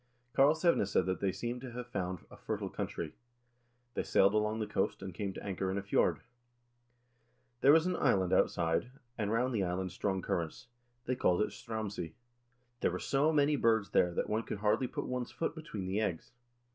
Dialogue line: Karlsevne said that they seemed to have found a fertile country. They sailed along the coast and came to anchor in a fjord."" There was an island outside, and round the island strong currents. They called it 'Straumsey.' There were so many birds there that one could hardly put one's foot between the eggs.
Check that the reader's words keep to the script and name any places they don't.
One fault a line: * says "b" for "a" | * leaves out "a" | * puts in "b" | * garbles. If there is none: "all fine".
all fine